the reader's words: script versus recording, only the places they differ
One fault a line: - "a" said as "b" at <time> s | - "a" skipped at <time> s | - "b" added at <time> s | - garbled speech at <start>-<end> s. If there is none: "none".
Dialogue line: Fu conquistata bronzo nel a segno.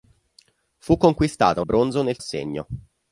none